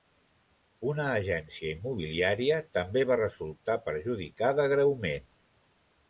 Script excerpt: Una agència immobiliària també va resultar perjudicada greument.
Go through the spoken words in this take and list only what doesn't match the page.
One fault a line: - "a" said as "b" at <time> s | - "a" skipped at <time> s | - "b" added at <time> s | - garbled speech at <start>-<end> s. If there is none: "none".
none